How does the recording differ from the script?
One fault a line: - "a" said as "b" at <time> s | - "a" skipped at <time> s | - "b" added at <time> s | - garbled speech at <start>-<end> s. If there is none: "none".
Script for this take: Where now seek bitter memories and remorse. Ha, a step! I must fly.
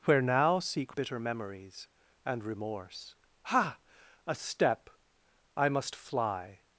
none